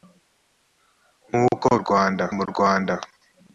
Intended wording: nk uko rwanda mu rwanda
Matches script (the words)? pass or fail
pass